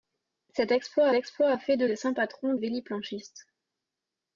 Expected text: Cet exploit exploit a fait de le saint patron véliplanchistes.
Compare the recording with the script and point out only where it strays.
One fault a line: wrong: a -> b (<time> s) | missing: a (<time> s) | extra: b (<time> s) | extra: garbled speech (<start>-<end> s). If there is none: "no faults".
no faults